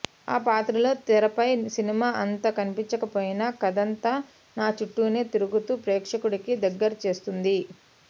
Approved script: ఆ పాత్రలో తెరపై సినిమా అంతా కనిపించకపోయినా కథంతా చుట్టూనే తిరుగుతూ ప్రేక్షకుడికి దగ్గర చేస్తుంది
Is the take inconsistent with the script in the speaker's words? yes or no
yes